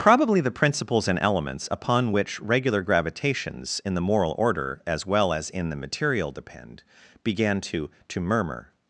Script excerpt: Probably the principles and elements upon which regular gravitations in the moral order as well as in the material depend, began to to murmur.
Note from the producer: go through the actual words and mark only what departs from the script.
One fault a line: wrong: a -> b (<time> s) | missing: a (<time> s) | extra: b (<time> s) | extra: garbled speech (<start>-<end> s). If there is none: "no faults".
no faults